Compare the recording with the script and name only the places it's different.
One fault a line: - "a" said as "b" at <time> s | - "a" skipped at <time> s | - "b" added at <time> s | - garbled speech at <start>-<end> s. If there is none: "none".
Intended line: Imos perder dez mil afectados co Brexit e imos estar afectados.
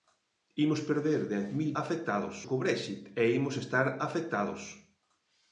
none